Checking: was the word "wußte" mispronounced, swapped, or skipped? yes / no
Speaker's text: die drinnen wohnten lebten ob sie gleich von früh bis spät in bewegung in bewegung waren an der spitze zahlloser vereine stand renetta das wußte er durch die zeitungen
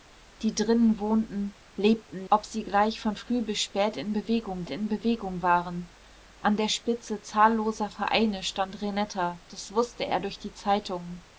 no